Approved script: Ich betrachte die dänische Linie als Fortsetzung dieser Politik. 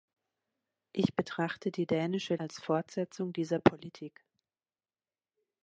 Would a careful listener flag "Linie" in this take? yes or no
yes